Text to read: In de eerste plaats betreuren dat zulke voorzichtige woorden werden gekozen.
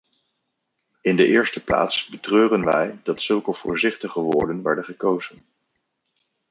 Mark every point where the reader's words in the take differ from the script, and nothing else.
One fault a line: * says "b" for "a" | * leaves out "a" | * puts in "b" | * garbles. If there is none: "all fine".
* puts in "wij"